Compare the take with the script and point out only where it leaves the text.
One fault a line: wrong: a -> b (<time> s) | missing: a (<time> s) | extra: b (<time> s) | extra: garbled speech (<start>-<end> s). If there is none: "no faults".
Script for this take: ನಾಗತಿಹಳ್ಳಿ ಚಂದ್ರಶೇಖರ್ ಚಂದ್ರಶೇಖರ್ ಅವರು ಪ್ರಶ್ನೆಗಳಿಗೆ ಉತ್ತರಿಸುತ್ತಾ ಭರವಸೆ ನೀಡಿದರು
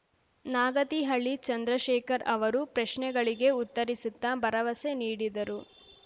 missing: ಚಂದ್ರಶೇಖರ್ (2.2 s)